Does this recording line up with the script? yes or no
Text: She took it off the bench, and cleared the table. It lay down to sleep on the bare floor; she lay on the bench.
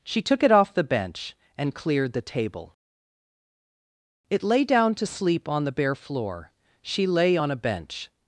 no